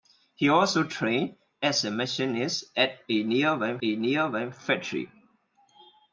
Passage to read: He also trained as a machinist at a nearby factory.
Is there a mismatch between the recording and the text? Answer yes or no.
yes